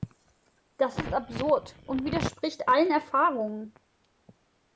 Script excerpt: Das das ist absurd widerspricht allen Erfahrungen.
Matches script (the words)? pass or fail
fail